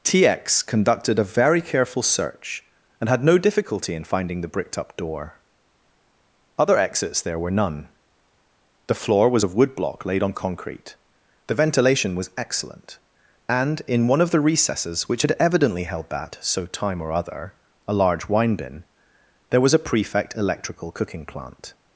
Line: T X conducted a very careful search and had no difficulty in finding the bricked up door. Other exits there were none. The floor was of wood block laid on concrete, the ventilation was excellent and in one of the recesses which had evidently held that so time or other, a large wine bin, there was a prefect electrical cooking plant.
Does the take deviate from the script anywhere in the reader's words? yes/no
no